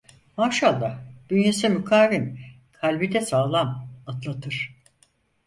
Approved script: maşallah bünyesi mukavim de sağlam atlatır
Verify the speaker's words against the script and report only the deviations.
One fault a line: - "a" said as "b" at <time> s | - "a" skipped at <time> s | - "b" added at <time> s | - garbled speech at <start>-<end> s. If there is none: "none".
- "kalbi" added at 2.7 s